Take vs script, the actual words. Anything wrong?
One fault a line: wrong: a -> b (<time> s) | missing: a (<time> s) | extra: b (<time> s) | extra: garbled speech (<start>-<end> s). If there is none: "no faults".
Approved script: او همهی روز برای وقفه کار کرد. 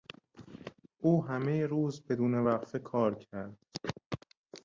wrong: برای -> بدون (2.1 s)